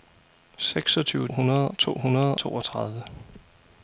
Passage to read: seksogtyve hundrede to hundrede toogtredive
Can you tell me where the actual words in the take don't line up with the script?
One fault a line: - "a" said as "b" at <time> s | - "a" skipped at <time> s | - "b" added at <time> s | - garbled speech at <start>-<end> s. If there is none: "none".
none